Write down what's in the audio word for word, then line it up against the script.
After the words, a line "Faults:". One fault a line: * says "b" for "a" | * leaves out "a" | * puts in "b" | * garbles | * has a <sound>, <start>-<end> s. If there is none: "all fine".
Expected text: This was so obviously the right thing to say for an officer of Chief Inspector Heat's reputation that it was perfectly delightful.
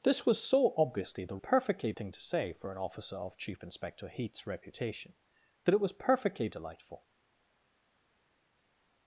This was so obviously the perfectly thing to say for an officer of Chief Inspector Heat's reputation that it was perfectly delightful.
Faults:
* says "perfectly" for "right"